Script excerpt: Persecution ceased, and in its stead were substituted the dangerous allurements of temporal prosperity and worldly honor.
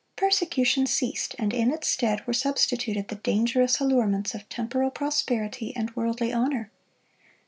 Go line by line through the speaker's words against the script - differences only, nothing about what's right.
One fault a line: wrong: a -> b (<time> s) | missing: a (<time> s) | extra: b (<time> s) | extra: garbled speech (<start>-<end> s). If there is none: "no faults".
no faults